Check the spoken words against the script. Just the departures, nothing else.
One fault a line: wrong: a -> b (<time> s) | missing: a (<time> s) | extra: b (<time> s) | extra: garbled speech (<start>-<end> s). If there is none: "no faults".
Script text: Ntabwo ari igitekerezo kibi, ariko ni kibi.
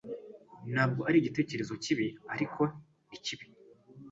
no faults